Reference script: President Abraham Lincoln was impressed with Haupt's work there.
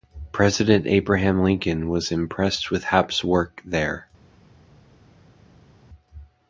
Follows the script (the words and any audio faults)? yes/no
yes